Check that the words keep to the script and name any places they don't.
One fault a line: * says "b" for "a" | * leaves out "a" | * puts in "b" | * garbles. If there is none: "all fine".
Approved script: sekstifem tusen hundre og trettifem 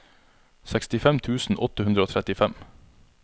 * puts in "åtte"